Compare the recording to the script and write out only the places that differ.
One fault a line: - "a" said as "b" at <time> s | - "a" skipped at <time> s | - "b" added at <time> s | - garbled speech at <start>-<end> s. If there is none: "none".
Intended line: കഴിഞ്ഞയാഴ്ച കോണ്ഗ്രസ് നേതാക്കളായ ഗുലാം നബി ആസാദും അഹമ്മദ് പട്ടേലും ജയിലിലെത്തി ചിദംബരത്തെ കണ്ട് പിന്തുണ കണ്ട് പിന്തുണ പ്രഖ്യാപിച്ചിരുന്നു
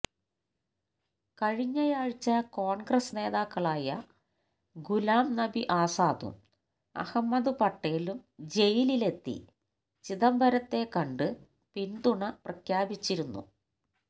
- "കണ്ട് പിന്തുണ" skipped at 12.2 s